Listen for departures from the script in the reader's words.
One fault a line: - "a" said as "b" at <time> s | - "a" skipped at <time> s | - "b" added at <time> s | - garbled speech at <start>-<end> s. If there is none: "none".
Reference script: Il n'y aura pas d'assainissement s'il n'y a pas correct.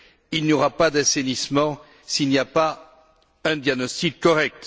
- "un diagnostic" added at 3.4 s